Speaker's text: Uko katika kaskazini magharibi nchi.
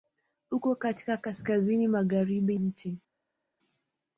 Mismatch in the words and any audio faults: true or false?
false